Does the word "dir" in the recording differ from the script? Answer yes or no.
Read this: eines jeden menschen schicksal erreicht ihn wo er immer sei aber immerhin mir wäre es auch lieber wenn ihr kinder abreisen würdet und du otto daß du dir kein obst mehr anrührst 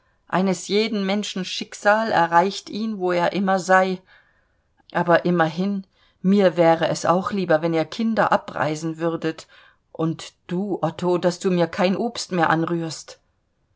yes